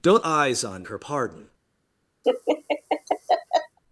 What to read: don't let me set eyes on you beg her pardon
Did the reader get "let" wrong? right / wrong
wrong